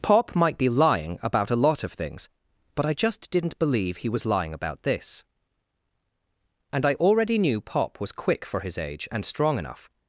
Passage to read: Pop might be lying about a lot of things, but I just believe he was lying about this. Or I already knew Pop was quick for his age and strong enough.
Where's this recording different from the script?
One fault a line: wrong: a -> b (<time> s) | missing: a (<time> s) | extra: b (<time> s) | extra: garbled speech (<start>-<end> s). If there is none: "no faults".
extra: didn't (3.3 s)
wrong: Or -> And (6.7 s)